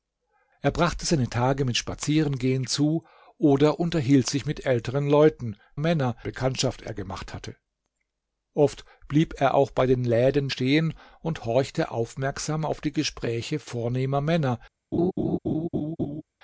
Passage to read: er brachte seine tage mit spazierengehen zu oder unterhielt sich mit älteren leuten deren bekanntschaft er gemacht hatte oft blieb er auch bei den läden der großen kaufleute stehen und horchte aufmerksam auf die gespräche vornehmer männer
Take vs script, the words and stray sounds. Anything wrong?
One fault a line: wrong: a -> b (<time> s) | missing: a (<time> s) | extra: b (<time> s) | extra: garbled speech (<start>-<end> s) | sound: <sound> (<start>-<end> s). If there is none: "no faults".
wrong: deren -> männer (5.8 s)
missing: der großen kaufleute (10.5 s)
sound: laugh (14.9-16.2 s)